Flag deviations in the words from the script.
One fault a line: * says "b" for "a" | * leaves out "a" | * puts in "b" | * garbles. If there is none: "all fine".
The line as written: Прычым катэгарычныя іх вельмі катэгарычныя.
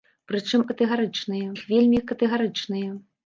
all fine